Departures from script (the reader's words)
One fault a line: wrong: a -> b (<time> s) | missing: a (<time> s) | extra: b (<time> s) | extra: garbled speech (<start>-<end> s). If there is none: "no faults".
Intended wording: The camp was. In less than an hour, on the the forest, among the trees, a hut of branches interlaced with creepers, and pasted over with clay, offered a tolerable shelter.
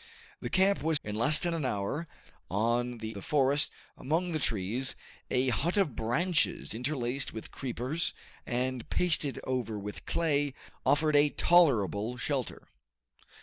no faults